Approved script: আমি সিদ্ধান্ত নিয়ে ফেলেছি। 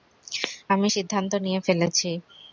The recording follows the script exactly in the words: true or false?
true